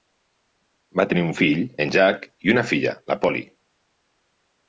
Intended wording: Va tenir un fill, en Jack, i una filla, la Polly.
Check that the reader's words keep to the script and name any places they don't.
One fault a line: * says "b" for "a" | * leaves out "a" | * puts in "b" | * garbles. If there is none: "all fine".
all fine